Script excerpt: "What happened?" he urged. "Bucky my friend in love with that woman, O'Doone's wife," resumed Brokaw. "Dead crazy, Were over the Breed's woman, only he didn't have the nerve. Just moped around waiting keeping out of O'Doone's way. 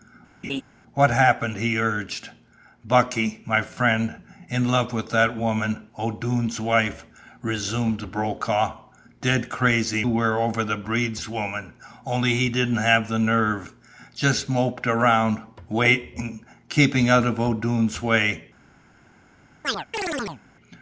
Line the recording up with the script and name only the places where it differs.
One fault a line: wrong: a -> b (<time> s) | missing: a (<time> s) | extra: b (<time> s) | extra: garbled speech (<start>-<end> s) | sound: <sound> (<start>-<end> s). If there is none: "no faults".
sound: laugh (0.4-0.6 s)
sound: chirp (19.6-20.4 s)